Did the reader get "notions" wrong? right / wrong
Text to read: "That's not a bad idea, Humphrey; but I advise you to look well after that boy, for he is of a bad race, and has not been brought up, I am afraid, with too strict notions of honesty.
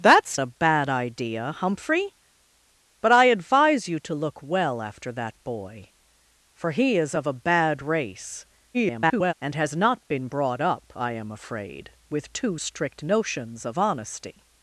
right